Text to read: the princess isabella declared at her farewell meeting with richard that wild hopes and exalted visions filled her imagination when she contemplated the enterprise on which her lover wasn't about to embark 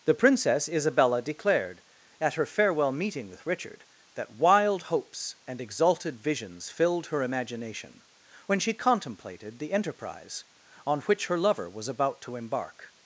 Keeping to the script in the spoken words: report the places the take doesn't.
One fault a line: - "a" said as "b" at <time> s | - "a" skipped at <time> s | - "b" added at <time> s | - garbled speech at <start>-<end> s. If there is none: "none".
- "wasn't" said as "was" at 11.7 s